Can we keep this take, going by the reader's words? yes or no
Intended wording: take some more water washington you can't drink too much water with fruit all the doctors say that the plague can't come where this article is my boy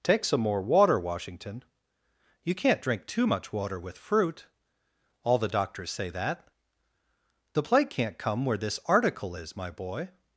yes